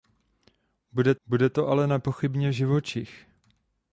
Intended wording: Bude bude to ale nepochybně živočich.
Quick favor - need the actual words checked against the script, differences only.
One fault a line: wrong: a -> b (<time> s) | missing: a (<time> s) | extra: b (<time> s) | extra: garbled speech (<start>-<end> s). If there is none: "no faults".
no faults